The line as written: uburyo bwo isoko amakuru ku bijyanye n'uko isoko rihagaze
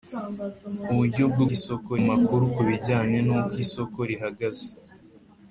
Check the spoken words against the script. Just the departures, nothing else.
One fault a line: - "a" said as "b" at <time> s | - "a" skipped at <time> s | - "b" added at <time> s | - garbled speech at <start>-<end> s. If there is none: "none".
none